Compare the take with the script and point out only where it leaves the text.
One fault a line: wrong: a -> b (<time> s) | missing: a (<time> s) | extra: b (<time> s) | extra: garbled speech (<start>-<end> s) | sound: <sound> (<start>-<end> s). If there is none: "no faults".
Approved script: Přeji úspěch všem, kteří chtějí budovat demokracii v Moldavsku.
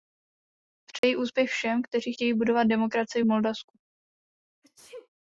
sound: dropout (1.0-1.0 s)
sound: sneeze (4.6-5.1 s)